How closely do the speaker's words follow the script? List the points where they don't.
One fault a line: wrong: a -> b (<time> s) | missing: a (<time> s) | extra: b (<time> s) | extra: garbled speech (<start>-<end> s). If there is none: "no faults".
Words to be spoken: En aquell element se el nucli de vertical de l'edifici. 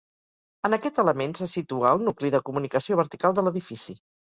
wrong: aquell -> aquest (0.8 s)
extra: situa (1.5 s)
extra: comunicació (2.5 s)